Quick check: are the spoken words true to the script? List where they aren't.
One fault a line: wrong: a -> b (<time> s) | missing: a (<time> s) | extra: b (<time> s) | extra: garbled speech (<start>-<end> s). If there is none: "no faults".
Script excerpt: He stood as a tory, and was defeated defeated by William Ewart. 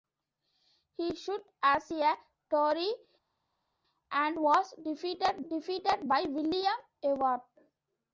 no faults